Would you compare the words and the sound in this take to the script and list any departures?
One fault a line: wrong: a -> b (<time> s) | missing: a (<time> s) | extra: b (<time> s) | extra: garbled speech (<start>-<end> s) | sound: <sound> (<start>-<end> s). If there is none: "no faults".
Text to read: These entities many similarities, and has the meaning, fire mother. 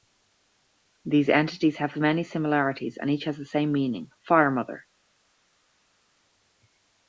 extra: have (1.8 s)
extra: each (3.1 s)
extra: same (3.5 s)